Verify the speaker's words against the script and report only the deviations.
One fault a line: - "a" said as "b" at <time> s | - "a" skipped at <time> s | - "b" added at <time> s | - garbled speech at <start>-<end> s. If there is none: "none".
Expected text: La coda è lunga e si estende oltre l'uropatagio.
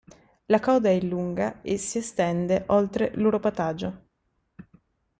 none